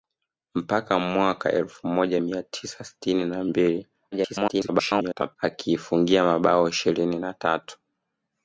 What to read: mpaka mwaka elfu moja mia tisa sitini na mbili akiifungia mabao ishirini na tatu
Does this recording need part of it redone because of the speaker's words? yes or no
yes